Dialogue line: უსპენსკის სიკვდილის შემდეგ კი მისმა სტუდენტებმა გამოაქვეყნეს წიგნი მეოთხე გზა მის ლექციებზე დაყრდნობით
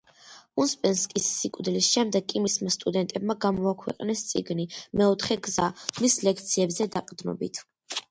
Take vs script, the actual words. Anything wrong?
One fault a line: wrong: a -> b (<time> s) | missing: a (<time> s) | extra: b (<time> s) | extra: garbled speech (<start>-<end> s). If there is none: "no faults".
no faults